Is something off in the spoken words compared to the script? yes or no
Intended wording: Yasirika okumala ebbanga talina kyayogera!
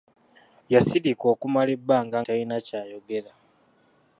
no